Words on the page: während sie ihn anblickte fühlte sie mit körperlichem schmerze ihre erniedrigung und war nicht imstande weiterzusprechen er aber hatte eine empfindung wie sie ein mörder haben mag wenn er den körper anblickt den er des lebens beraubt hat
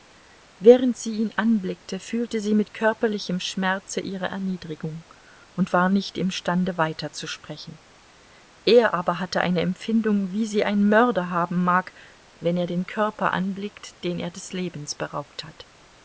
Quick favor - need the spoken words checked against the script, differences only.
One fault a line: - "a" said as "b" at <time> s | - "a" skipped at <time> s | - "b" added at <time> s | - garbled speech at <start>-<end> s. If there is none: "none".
none